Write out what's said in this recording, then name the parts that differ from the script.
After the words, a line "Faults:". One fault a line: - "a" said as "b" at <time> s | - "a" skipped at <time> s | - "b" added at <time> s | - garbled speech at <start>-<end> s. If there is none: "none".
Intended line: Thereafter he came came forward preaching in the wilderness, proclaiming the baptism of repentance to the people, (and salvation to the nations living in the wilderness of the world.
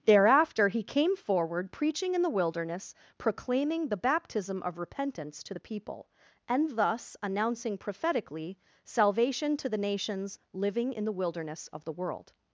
Thereafter he came forward preaching in the wilderness, proclaiming the baptism of repentance to the people, (and thus) announcing prophetically salvation to the nations living in the wilderness of the world.
Faults:
- "came" skipped at 1.1 s
- "thus announcing prophetically" added at 6.8 s